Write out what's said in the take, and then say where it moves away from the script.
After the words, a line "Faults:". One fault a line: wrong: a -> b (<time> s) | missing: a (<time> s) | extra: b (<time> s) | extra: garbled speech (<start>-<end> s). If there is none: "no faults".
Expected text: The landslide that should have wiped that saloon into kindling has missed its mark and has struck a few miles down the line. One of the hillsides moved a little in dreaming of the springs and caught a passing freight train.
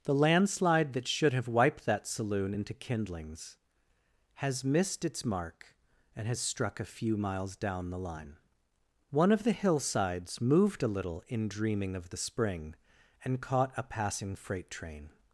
The landslide that should have wiped that saloon into kindlings has missed its mark and has struck a few miles down the line. One of the hillsides moved a little in dreaming of the spring and caught a passing freight train.
Faults:
wrong: kindling -> kindlings (2.7 s)
wrong: springs -> spring (12.2 s)